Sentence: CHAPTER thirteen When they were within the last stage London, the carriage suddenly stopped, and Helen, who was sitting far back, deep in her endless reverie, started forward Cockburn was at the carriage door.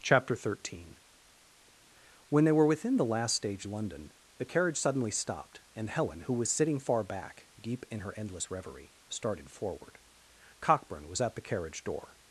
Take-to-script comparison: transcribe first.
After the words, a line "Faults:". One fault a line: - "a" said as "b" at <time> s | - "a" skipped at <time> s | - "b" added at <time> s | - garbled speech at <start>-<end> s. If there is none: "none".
CHAPTER thirteen When they were within the last stage London, the carriage suddenly stopped, and Helen, who was sitting far back, deep in her endless reverie, started forward Cockburn was at the carriage door.
Faults:
none